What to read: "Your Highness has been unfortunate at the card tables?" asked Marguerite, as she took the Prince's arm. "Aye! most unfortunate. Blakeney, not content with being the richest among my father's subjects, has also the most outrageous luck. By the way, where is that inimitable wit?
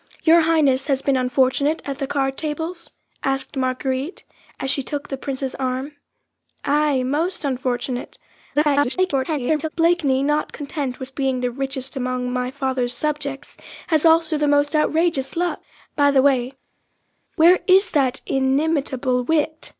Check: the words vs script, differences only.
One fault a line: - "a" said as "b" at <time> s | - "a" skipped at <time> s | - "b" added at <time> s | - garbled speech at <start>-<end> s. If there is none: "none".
- garbled speech at 8.5-9.7 s